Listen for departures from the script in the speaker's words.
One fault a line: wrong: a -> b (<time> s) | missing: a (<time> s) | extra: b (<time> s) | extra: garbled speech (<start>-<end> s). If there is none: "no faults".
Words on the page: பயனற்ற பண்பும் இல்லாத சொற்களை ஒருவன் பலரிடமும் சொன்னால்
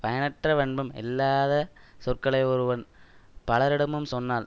no faults